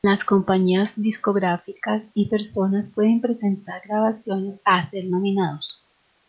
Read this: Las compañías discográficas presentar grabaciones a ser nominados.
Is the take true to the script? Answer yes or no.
no